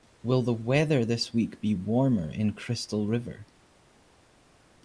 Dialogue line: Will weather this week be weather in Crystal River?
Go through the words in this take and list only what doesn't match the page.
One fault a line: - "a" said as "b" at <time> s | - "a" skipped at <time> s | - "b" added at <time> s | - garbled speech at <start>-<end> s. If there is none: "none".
- "the" added at 0.4 s
- "weather" said as "warmer" at 1.8 s